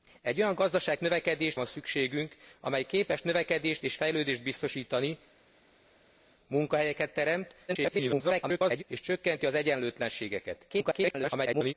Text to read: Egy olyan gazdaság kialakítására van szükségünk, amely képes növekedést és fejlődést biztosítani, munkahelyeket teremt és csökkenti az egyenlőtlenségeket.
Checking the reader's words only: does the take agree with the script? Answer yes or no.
no